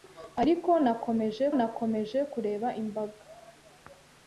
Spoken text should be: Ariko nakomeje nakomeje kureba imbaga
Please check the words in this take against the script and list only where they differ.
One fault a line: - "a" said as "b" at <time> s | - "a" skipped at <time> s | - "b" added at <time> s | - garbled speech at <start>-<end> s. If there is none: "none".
none